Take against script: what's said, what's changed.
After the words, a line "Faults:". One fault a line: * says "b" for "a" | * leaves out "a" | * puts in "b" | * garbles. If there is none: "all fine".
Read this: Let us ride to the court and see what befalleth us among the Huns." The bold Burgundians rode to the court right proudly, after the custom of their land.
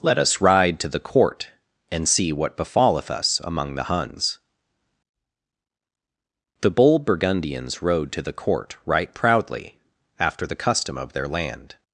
Let us ride to the court and see what befalleth us among the Huns." The bold Burgundians rode to the court right proudly, after the custom of their land.
Faults:
all fine